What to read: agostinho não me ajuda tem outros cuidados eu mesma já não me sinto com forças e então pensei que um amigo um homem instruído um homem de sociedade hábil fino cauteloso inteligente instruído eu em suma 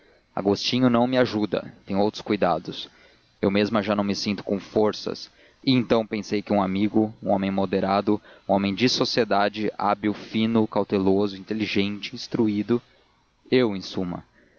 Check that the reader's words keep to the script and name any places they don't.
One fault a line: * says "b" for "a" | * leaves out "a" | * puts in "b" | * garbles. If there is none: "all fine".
* says "moderado" for "instruído"